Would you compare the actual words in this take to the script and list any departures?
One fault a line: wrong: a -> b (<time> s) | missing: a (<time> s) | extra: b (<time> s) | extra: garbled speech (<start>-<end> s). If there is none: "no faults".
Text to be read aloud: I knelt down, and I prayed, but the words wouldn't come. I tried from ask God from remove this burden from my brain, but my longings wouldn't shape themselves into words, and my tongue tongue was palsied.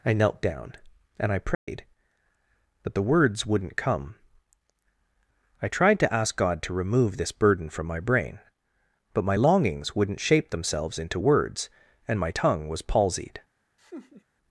wrong: from -> to (6.0 s)
wrong: from -> to (6.6 s)
missing: tongue (12.7 s)